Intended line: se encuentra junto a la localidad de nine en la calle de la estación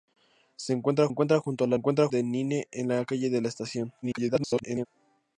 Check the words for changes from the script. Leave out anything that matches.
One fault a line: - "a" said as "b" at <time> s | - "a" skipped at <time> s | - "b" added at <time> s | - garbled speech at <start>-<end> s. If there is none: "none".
- "encuentra" added at 1.1 s
- "localidad" said as "encuentra" at 1.7 s
- garbled speech at 4.0-4.9 s